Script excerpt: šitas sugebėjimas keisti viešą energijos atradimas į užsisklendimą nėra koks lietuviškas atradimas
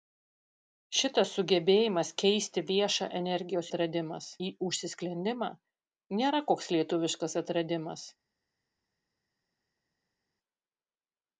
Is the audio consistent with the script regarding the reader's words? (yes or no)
yes